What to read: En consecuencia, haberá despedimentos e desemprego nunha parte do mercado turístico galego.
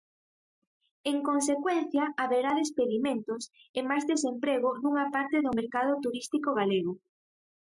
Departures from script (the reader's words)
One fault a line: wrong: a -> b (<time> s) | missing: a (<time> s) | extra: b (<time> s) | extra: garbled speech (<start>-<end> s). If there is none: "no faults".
extra: máis (3.9 s)